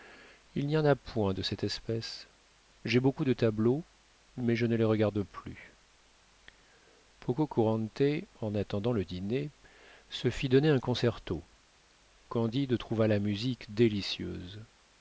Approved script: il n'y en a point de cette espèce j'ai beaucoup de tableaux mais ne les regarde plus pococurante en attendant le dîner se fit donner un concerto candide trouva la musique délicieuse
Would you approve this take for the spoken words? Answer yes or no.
no